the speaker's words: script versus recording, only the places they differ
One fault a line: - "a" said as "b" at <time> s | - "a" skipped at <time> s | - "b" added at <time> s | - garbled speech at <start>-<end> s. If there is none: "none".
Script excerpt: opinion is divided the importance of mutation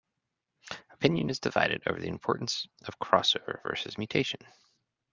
- "over" added at 1.9 s
- "crossover versus" added at 3.0 s